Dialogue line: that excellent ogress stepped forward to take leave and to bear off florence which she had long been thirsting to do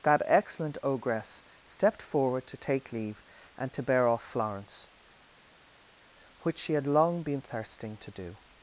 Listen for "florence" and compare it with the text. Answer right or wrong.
right